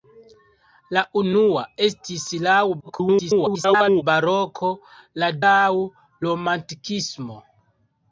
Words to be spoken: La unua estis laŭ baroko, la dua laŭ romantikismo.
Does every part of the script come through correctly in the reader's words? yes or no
no